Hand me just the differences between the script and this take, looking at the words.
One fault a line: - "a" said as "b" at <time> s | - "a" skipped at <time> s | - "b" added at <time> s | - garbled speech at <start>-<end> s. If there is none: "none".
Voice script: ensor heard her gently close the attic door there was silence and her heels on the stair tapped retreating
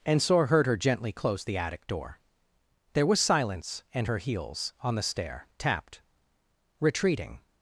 none